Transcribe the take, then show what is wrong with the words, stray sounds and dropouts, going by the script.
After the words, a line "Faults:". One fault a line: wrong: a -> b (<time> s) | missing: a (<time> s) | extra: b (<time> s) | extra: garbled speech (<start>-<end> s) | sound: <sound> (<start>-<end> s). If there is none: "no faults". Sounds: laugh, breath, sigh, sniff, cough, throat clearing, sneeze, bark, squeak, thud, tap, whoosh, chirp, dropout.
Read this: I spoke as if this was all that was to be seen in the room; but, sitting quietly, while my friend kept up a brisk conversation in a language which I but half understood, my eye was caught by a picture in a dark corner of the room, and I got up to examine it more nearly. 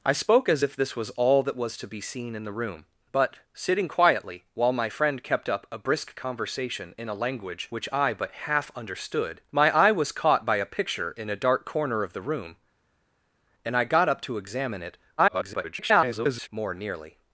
I spoke as if this was all that was to be seen in the room; but, sitting quietly, while my friend kept up a brisk conversation in a language which I but half understood, my eye was caught by a picture in a dark corner of the room, and I got up to examine it [garbled] more nearly.
Faults:
extra: garbled speech (15.2-16.5 s)